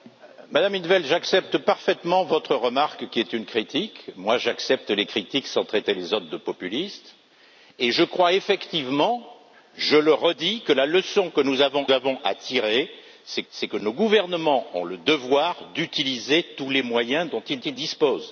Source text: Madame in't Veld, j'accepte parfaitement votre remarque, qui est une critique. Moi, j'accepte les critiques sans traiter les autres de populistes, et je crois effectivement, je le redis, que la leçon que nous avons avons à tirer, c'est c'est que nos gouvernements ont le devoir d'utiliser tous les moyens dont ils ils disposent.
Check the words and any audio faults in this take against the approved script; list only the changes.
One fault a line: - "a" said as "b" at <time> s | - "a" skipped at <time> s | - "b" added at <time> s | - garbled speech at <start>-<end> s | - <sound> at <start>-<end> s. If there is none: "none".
none